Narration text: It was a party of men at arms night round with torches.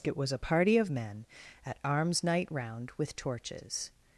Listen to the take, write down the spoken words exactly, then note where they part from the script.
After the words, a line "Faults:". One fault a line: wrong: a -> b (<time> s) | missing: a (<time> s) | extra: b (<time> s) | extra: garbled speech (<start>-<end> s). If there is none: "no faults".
It was a party of men at arms night round with torches.
Faults:
no faults